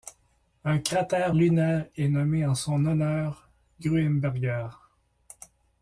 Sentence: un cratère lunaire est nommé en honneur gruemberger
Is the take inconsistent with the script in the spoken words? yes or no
yes